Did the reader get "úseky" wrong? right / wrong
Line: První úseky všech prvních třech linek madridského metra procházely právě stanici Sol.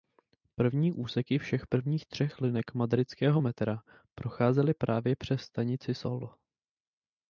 right